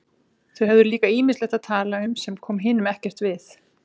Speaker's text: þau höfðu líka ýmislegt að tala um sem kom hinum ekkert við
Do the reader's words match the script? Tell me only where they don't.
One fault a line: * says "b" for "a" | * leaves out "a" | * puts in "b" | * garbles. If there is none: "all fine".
all fine